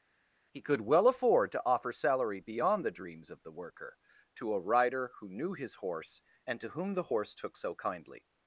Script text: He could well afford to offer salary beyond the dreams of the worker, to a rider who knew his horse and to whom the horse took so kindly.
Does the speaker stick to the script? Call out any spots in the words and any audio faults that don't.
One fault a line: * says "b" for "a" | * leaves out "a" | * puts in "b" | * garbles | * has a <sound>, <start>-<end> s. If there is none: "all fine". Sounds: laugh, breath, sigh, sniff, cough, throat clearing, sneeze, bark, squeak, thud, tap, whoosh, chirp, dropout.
all fine